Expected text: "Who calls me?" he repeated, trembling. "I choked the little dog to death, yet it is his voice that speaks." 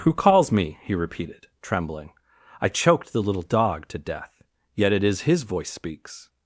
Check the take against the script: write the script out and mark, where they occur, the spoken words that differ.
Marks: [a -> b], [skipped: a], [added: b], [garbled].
"Who calls me?" he repeated, trembling. "I choked the little dog to death, yet it is his voice [skipped: that] speaks."